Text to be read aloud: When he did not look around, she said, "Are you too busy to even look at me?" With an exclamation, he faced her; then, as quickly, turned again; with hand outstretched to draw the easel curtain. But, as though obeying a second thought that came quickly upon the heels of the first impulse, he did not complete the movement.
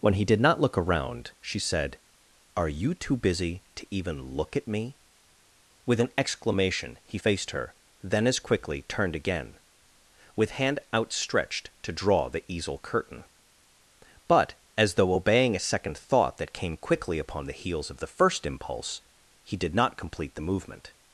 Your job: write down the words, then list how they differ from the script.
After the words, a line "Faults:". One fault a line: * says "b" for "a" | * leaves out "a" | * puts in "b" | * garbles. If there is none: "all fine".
When he did not look around, she said, "Are you too busy to even look at me?" With an exclamation, he faced her; then, as quickly, turned again; with hand outstretched to draw the easel curtain. But, as though obeying a second thought that came quickly upon the heels of the first impulse, he did not complete the movement.
Faults:
all fine